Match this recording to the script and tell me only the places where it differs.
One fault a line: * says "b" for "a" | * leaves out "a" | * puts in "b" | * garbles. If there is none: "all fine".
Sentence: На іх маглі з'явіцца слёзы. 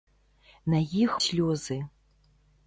* leaves out "маглі з'явіцца"